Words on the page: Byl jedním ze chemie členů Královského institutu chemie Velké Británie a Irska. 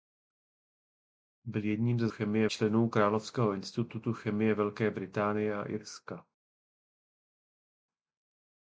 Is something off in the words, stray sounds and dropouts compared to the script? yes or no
no